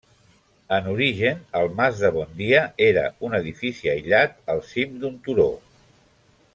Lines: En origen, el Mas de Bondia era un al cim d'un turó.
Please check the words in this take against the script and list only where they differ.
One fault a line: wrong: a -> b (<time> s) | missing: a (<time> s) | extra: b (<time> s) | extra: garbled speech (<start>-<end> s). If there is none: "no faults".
extra: edifici aïllat (3.4 s)